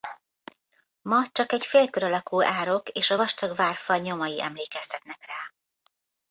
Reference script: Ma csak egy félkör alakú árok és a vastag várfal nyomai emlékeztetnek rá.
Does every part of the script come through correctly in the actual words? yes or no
yes